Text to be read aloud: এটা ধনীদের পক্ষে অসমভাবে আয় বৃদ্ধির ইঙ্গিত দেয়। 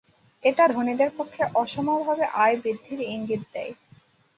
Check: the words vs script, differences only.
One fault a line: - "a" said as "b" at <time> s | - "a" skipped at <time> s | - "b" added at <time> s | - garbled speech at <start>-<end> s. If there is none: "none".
none